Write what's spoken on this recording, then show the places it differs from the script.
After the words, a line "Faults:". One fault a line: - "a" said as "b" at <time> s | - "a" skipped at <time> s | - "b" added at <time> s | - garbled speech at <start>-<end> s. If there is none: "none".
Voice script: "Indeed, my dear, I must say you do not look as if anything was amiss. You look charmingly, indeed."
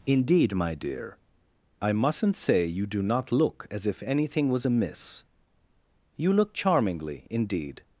"Indeed, my dear, I mustn't say you do not look as if anything was amiss. You look charmingly, indeed."
Faults:
- "must" said as "mustn't" at 1.9 s